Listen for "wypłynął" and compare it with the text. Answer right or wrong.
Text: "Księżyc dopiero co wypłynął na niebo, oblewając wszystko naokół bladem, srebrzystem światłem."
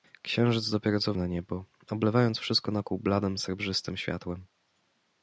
wrong